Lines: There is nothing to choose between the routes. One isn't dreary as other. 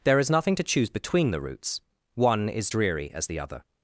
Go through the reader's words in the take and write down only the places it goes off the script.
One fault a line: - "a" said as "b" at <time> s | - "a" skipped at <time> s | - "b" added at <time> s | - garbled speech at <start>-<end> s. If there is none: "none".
- "isn't" said as "is" at 2.5 s
- "the" added at 3.2 s